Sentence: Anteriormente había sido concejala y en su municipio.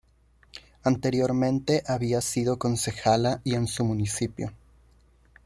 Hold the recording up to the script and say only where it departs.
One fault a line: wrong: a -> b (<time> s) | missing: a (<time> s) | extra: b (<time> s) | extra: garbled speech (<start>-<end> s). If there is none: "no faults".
no faults